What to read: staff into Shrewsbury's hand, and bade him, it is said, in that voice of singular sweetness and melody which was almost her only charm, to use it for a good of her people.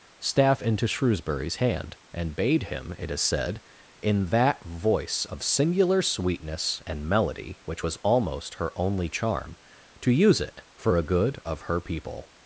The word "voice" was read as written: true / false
true